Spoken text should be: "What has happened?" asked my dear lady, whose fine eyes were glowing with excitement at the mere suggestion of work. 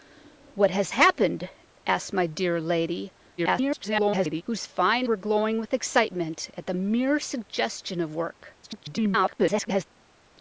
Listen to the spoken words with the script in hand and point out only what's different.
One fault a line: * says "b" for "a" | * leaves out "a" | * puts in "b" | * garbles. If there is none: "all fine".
* garbles
* leaves out "eyes"
* garbles